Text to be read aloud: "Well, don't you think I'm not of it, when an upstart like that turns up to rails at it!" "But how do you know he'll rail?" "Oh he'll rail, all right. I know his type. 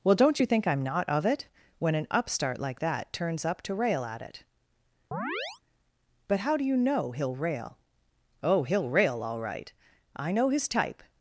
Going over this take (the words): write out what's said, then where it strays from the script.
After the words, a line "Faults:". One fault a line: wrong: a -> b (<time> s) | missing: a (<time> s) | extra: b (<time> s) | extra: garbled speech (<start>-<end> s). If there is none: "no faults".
"Well, don't you think I'm not of it, when an upstart like that turns up to rail at it!" "But how do you know he'll rail?" "Oh he'll rail, all right. I know his type.
Faults:
wrong: rails -> rail (3.7 s)